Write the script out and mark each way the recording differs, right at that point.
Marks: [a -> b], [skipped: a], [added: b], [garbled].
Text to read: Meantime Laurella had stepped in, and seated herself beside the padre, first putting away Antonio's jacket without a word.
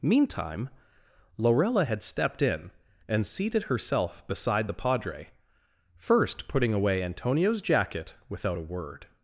Meantime Laurella had stepped in, and seated herself beside the padre, first putting away Antonio's jacket without a word.